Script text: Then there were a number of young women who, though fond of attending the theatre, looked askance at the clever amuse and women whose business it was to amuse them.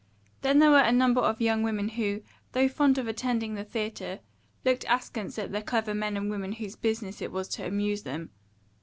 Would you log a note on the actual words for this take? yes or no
yes